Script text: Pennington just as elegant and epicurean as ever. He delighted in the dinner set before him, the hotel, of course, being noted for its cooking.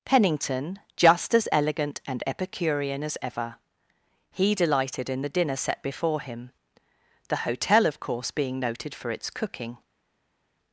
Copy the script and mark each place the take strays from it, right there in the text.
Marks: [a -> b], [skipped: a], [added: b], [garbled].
Pennington just as elegant and epicurean as ever. He delighted in the dinner set before him, the hotel, of course, being noted for its cooking.